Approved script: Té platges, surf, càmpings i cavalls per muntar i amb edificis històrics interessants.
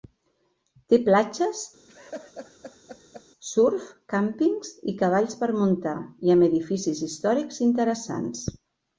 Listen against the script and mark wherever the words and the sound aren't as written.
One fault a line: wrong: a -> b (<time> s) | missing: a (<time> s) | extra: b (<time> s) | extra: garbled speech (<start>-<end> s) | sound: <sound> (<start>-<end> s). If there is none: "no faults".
sound: laugh (1.9-3.2 s)